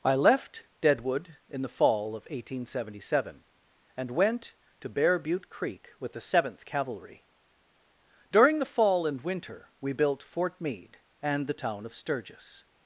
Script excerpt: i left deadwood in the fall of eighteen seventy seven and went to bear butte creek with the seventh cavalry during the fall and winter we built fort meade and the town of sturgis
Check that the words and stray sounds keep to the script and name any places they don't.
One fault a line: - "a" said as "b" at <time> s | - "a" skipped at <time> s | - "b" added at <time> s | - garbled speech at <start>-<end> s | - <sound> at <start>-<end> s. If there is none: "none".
none